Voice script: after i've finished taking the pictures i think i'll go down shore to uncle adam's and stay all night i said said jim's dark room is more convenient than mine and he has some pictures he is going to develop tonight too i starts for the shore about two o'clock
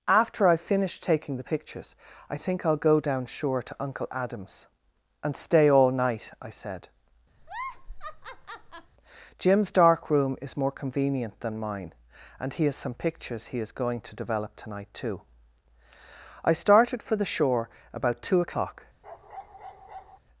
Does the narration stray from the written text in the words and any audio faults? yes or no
yes